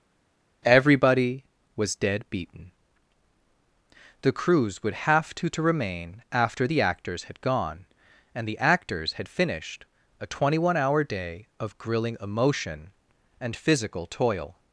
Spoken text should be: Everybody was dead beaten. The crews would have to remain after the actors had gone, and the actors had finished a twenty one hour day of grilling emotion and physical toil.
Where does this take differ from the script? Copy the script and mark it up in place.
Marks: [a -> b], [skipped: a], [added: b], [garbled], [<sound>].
Everybody was dead beaten. The crews would have to [added: to] remain after the actors had gone, and the actors had finished a twenty one hour day of grilling emotion and physical toil.